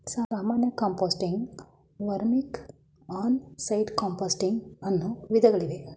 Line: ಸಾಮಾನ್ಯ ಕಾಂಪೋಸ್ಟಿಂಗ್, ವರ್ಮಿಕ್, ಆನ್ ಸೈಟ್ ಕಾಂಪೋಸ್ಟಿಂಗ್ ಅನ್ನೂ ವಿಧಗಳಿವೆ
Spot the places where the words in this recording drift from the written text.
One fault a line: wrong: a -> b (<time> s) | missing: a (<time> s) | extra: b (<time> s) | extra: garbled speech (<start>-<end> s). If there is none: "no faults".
no faults